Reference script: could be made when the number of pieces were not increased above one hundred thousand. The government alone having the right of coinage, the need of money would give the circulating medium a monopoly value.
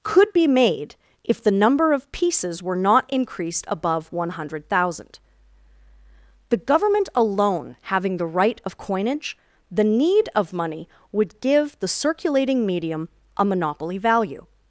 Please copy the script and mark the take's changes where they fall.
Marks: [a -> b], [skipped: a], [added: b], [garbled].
could be made [when -> if] the number of pieces were not increased above one hundred thousand. The government alone having the right of coinage, the need of money would give the circulating medium a monopoly value.